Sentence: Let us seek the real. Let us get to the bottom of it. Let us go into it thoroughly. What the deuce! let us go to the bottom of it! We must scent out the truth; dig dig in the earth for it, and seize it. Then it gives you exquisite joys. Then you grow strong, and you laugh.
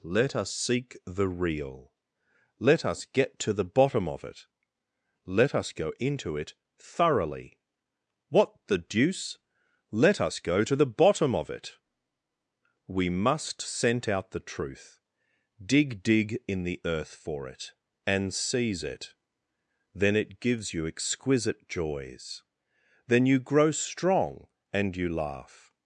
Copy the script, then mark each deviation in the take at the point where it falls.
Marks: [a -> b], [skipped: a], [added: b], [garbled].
Let us seek the real. Let us get to the bottom of it. Let us go into it thoroughly. What the deuce! let us go to the bottom of it! We must scent out the truth; dig dig in the earth for it, and seize it. Then it gives you exquisite joys. Then you grow strong, and you laugh.